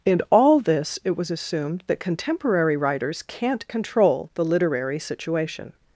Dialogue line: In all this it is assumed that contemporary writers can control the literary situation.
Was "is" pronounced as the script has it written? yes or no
no